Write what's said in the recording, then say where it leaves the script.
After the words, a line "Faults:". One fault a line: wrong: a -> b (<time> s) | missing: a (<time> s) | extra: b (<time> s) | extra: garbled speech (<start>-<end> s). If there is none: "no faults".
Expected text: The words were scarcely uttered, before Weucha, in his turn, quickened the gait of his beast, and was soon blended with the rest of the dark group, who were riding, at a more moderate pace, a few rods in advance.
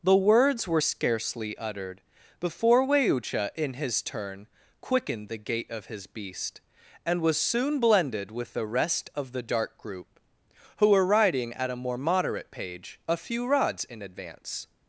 The words were scarcely uttered, before Weucha, in his turn, quickened the gait of his beast, and was soon blended with the rest of the dark group, who were riding, at a more moderate page, a few rods in advance.
Faults:
wrong: pace -> page (12.5 s)